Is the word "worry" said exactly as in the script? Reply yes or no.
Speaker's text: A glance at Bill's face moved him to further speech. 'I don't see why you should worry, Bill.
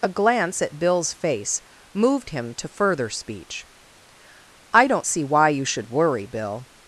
yes